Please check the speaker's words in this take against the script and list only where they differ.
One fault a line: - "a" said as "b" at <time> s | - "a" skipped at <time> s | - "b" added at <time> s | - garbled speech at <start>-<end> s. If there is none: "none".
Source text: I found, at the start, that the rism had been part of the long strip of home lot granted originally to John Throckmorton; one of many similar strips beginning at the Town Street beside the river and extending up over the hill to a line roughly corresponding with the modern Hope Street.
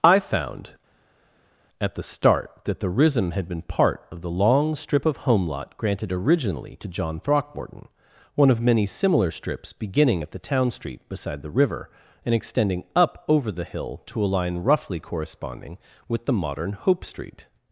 none